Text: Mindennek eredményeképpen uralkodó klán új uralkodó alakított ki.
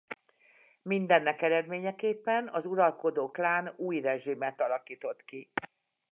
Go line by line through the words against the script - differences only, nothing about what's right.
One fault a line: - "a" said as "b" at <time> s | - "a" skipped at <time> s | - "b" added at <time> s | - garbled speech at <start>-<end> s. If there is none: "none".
- "az" added at 2.5 s
- "uralkodó" said as "rezsimet" at 4.0 s